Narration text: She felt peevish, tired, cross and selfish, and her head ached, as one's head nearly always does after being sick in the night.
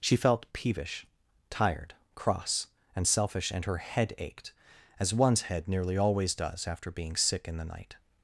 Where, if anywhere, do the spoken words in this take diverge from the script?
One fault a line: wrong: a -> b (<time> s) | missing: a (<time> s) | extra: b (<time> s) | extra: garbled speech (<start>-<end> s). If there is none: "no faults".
no faults